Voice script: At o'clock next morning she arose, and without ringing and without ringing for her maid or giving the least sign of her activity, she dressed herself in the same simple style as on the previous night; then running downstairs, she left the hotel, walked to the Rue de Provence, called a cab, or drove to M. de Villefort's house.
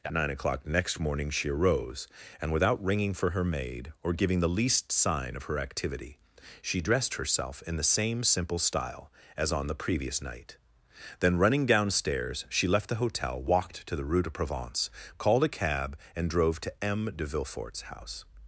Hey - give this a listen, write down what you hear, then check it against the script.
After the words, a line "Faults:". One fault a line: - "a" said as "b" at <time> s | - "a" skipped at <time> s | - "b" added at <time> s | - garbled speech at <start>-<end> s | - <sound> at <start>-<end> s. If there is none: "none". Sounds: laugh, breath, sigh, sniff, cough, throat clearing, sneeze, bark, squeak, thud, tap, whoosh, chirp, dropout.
At nine o'clock next morning she arose, and without ringing for her maid or giving the least sign of her activity, she dressed herself in the same simple style as on the previous night; then running downstairs, she left the hotel, walked to the Rue de Provence, called a cab, and drove to M. de Villefort's house.
Faults:
- "nine" added at 0.1 s
- "and without ringing" skipped at 3.1 s
- "or" said as "and" at 16.1 s